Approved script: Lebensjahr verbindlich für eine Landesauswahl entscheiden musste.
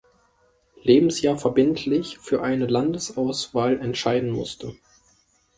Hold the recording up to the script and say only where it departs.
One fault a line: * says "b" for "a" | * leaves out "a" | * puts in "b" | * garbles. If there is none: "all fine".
all fine